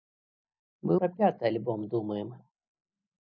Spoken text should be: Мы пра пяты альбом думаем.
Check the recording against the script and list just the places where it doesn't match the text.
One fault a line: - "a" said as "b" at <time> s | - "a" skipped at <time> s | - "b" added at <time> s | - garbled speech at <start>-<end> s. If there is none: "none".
none